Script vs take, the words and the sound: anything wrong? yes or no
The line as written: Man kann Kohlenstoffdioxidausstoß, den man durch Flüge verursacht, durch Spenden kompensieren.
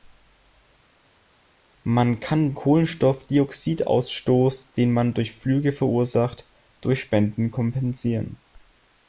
no